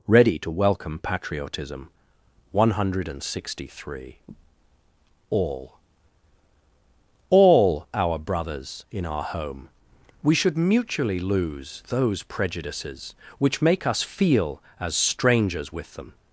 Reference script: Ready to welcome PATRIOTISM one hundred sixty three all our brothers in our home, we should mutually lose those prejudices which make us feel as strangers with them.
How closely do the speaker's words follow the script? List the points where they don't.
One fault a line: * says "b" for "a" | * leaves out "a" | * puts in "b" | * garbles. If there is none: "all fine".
* puts in "all"